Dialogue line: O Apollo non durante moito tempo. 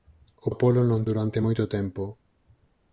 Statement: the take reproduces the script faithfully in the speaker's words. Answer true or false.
true